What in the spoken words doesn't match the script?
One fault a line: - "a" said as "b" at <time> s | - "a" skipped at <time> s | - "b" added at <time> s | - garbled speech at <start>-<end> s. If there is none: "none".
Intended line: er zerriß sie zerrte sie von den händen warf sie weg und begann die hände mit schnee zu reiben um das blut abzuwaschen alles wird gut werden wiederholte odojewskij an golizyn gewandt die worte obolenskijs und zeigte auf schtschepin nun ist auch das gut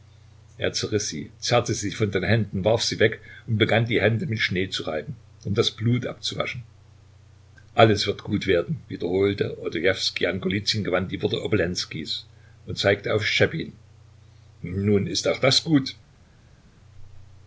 none